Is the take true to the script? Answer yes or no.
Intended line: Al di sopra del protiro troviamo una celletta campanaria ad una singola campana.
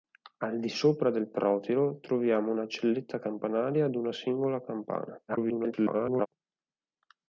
no